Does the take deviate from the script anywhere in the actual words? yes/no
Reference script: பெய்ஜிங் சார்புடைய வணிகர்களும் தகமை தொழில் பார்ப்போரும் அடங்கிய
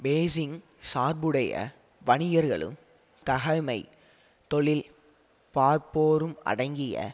no